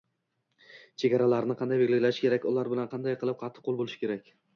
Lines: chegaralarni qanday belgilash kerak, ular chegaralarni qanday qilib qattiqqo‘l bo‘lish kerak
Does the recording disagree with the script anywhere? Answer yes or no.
yes